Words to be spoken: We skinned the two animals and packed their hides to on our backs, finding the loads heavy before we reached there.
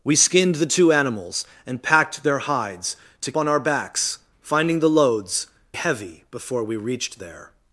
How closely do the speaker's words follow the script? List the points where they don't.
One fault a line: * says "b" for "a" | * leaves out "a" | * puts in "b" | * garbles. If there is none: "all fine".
all fine